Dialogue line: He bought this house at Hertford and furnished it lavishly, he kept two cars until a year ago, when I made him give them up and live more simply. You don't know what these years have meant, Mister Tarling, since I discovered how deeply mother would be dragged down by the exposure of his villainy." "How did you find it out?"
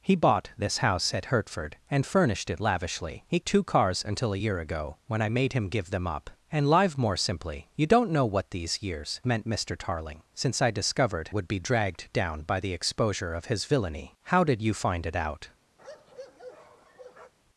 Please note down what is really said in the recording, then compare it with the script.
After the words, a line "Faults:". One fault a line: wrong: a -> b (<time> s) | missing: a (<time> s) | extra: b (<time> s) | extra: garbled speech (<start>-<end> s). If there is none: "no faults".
He bought this house at Hertford and furnished it lavishly, he two cars until a year ago, when I made him give them up and live more simply. You don't know what these years meant, Mister Tarling, since I discovered would be dragged down by the exposure of his villainy." "How did you find it out?"
Faults:
missing: kept (3.4 s)
missing: have (9.2 s)
missing: how deeply mother (11.3 s)